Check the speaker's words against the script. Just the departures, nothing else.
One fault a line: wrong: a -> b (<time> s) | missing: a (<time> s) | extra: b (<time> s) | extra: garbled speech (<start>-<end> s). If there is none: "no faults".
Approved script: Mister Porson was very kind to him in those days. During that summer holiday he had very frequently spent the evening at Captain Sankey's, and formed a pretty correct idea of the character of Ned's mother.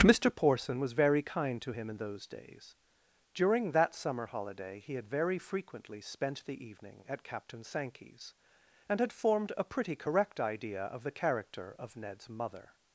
extra: had (9.0 s)